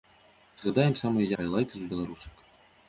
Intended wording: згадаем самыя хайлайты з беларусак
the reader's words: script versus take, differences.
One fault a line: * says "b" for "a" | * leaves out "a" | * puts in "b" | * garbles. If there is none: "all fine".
all fine